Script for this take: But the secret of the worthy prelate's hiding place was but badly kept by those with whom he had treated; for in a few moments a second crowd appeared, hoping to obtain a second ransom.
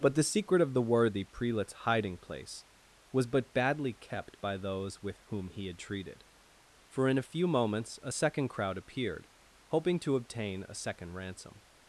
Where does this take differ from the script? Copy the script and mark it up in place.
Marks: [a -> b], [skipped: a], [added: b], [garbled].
But the secret of the worthy prelate's hiding place was but badly kept by those with whom he had treated; for in a few moments a second crowd appeared, hoping to obtain a second ransom.